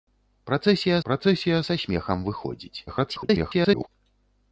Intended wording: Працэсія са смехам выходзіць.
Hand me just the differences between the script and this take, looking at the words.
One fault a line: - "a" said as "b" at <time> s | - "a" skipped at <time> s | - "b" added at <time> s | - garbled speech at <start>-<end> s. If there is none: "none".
- "працэсія" added at 1.1 s
- garbled speech at 2.9-3.9 s